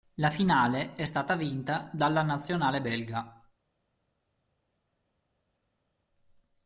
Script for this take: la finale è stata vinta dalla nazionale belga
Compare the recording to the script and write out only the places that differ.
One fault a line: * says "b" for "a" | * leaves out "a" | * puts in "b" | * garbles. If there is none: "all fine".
all fine